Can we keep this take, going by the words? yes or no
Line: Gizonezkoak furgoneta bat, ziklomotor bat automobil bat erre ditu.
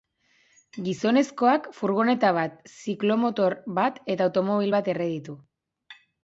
no